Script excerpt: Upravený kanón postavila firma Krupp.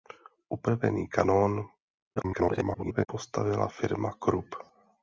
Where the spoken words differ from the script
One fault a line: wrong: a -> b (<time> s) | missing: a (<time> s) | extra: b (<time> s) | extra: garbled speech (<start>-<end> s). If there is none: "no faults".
extra: garbled speech (2.2-3.1 s)